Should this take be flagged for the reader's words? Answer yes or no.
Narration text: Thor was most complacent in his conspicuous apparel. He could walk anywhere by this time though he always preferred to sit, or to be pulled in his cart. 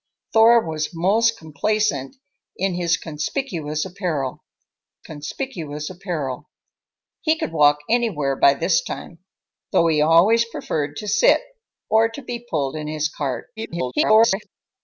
yes